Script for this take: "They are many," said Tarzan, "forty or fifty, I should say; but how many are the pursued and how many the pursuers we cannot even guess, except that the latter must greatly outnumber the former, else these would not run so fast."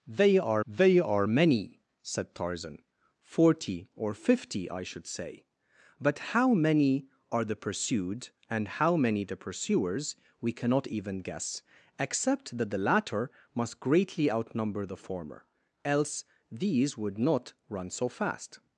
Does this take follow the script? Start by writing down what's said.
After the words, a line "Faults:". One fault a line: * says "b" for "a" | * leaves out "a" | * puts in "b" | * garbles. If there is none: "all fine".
"They are they are many," said Tarzan, "forty or fifty, I should say; but how many are the pursued and how many the pursuers we cannot even guess, except that the latter must greatly outnumber the former, else these would not run so fast."
Faults:
* puts in "they are"